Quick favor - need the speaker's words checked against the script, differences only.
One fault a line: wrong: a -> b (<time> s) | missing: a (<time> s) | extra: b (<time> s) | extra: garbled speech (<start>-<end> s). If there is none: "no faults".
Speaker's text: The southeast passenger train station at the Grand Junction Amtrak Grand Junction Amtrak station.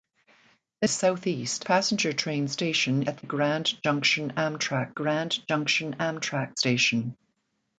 no faults